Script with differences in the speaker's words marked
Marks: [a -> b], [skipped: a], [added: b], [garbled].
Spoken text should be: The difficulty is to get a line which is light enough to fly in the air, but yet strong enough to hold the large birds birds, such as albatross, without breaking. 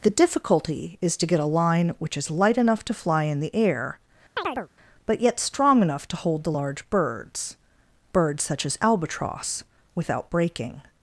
The difficulty is to get a line which is light enough to fly in the air, but yet strong enough to hold the large birds birds, such as albatross, without breaking.